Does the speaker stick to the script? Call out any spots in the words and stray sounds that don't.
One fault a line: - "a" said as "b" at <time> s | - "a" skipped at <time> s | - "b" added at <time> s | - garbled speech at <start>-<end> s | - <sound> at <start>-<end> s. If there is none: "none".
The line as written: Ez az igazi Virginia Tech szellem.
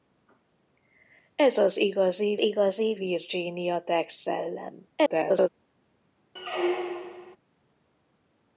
- "igazi" added at 2.4 s
- garbled speech at 5.0-5.5 s
- squeak at 6.4-7.4 s